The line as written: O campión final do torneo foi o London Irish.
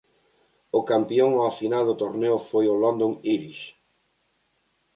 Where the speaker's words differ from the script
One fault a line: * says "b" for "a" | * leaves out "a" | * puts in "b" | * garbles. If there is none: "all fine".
* puts in "ao"